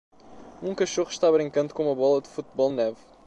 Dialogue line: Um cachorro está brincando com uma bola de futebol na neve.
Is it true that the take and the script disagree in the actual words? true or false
true